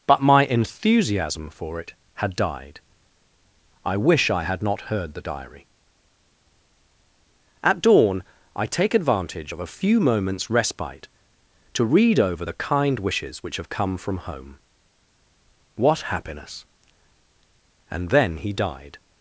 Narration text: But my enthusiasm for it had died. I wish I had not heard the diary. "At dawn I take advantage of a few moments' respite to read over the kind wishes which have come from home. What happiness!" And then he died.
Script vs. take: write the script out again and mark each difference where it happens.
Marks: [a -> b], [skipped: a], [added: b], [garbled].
But my enthusiasm for it had died. I wish I had not heard the diary. "At dawn I take advantage of a few moments' respite to read over the kind wishes which have come from home. What happiness!" And then he died.